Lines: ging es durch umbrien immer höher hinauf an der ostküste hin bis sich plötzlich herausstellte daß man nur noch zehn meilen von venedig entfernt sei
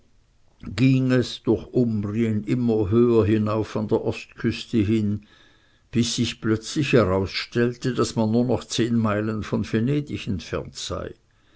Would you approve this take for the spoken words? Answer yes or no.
yes